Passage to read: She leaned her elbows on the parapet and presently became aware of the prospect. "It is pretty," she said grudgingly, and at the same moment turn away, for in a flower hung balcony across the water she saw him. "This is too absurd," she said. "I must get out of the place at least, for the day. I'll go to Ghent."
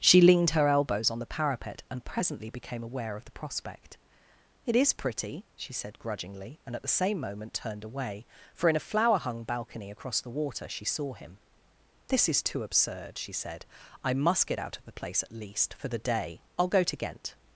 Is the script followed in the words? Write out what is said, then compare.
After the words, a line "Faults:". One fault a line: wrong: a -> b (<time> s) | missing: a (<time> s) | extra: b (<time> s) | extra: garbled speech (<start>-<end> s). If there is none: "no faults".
She leaned her elbows on the parapet and presently became aware of the prospect. "It is pretty," she said grudgingly, and at the same moment turned away, for in a flower hung balcony across the water she saw him. "This is too absurd," she said. "I must get out of the place at least, for the day. I'll go to Ghent."
Faults:
wrong: turn -> turned (7.5 s)